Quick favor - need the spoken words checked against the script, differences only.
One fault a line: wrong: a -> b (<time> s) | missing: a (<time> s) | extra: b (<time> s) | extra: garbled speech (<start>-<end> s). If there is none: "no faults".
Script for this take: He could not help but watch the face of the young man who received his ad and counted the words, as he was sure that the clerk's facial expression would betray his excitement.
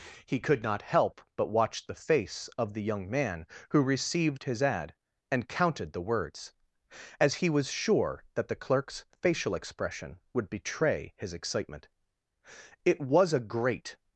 extra: It was a great (12.8 s)